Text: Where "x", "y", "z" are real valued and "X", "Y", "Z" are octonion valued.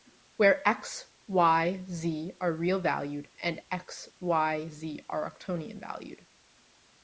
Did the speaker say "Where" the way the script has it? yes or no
yes